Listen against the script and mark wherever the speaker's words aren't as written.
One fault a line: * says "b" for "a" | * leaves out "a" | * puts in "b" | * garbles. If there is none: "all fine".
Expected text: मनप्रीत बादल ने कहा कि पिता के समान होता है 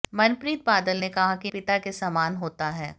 all fine